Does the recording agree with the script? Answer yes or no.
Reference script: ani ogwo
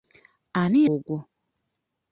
yes